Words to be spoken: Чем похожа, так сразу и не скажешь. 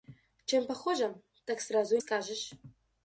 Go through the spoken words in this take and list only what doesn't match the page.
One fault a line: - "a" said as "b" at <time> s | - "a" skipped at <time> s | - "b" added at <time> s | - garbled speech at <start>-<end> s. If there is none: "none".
- "не" skipped at 2.0 s